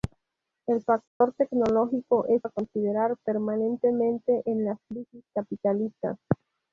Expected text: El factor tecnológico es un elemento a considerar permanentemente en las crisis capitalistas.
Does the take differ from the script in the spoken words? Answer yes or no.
yes